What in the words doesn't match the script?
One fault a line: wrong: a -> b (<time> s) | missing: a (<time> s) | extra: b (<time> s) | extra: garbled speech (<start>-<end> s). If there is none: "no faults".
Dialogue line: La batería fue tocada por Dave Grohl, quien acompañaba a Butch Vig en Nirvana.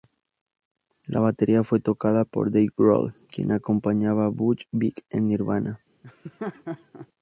no faults